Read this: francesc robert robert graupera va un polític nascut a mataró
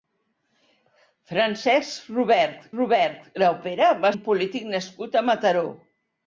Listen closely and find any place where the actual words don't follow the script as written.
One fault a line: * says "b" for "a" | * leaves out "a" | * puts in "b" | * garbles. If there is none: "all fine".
all fine